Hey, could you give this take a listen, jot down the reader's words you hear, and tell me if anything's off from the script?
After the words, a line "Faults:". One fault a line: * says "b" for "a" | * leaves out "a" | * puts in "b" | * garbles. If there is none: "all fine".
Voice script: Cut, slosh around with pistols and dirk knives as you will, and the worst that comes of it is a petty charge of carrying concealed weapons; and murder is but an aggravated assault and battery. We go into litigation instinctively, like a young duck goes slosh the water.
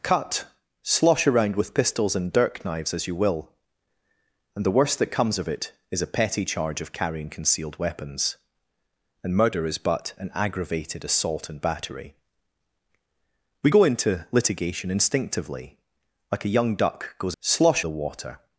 Cut, slosh around with pistols and dirk knives as you will, and the worst that comes of it is a petty charge of carrying concealed weapons; and murder is but an aggravated assault and battery. We go into litigation instinctively, like a young duck goes slosh the water.
Faults:
all fine